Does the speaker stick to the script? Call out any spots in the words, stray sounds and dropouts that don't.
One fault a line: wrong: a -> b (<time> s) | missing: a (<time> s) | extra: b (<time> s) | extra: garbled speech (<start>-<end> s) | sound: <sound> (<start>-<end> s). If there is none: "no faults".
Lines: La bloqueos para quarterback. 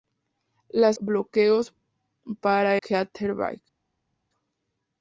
no faults